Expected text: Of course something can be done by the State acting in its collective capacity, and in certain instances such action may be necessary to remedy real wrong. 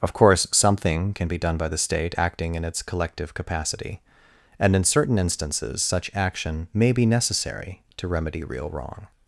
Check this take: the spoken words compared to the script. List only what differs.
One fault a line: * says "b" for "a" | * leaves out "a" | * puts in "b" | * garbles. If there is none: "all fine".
all fine